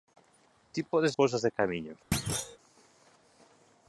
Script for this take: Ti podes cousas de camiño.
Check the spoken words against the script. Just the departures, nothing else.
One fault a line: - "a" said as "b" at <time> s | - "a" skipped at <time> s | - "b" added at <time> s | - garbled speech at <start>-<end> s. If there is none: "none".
none